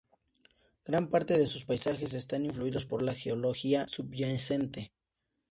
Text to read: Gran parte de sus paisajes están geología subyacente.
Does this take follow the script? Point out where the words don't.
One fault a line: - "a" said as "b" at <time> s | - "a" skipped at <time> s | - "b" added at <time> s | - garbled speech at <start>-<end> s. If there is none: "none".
- "influidos por la" added at 2.5 s